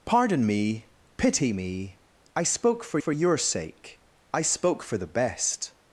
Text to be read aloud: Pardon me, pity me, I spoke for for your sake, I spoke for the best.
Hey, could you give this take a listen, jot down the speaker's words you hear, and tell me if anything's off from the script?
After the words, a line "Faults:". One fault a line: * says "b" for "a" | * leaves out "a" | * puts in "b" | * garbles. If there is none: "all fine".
Pardon me, pity me, I spoke for for your sake, I spoke for the best.
Faults:
all fine